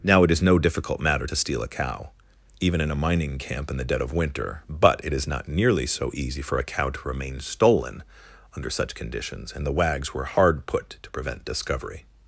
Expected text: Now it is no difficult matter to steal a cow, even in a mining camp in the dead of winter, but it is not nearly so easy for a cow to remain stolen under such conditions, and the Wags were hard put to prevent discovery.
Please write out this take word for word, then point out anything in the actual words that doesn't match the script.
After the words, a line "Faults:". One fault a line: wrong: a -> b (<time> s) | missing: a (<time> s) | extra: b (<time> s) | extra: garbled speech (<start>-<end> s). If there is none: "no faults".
Now it is no difficult matter to steal a cow, even in a mining camp in the dead of winter, but it is not nearly so easy for a cow to remain stolen under such conditions, and the Wags were hard put to prevent discovery.
Faults:
no faults